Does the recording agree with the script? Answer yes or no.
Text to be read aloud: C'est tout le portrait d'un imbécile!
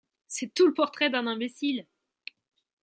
yes